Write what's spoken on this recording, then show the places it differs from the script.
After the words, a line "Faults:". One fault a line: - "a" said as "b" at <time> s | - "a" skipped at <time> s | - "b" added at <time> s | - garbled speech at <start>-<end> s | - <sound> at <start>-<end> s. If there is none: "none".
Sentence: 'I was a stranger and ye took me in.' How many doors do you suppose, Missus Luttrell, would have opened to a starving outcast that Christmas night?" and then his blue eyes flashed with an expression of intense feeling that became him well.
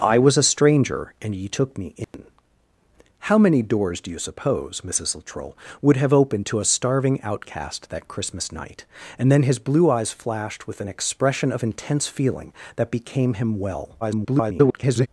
'I was a stranger and ye took me in.' How many doors do you suppose, Missus Luttrell, would have opened to a starving outcast that Christmas night?" and then his blue eyes flashed with an expression of intense feeling that became him well. [garbled]
Faults:
- dropout at 2.0-2.1 s
- garbled speech at 14.0-15.1 s